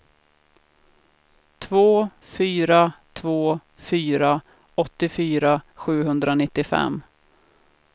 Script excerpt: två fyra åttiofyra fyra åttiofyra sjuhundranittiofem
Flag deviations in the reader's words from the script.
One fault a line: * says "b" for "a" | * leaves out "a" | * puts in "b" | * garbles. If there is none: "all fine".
* says "två" for "åttiofyra"